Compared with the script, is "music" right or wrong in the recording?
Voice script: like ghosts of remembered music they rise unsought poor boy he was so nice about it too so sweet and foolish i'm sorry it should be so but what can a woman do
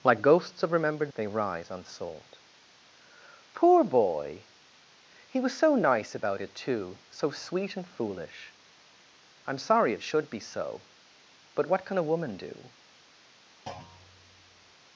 wrong